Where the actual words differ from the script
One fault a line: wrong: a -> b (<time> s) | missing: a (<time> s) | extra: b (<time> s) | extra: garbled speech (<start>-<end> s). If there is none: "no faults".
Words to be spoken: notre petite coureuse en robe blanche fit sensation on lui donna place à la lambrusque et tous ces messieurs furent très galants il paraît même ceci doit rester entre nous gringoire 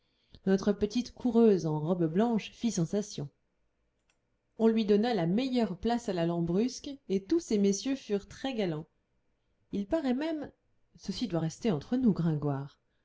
extra: la meilleure (5.1 s)